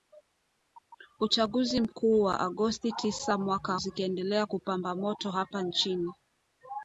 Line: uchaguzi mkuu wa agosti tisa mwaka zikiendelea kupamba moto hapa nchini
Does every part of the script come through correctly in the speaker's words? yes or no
yes